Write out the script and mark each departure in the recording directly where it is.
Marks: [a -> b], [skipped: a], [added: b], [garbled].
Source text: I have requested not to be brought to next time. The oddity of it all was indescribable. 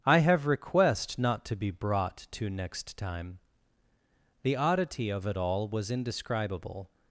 I have [requested -> request] not to be brought to next time. The oddity of it all was indescribable.